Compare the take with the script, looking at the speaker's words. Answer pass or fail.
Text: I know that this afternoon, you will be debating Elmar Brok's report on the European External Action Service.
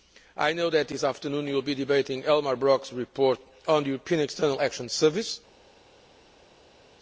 pass